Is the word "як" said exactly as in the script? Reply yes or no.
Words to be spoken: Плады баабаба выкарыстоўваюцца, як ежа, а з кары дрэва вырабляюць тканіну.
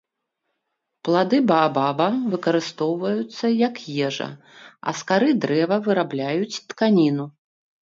yes